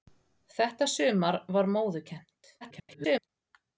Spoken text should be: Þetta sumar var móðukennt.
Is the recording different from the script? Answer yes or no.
yes